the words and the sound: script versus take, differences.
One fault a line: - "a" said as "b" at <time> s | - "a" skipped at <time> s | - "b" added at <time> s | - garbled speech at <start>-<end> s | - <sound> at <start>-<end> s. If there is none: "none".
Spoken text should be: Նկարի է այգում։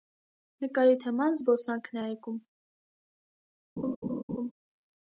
- "թեման զբոսանքն" added at 1.0 s
- laugh at 3.8-4.5 s